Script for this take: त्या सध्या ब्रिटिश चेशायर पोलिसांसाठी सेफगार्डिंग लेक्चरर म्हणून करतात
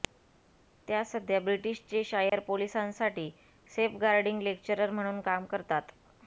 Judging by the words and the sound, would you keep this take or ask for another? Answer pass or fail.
fail